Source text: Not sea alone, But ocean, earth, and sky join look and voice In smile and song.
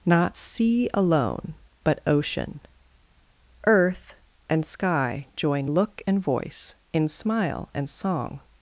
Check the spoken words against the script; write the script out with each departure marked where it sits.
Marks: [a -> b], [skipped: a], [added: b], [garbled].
Not sea alone, But ocean, earth, and sky join look and voice In smile and song.